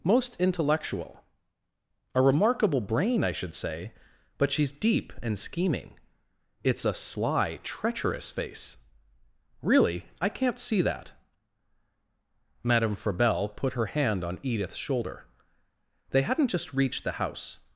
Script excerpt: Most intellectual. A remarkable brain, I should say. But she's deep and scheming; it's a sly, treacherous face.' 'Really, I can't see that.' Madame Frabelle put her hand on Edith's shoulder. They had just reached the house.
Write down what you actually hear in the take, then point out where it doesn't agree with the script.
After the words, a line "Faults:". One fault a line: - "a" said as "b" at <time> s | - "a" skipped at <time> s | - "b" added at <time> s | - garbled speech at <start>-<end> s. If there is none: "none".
Most intellectual. A remarkable brain, I should say. But she's deep and scheming; it's a sly, treacherous face.' 'Really, I can't see that.' Madame Frabelle put her hand on Edith's shoulder. They hadn't just reached the house.
Faults:
- "had" said as "hadn't" at 16.2 s